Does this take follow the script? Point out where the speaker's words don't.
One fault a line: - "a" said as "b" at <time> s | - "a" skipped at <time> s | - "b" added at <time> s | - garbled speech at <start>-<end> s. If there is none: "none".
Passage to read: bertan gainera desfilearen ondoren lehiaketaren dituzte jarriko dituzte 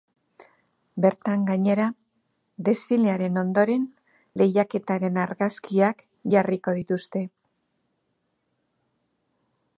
- "dituzte" said as "argazkiak" at 5.2 s